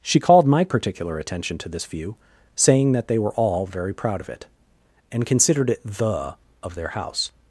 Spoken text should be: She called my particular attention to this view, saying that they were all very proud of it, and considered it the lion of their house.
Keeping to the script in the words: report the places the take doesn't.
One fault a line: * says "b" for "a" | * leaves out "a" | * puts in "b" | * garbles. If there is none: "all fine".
* leaves out "lion"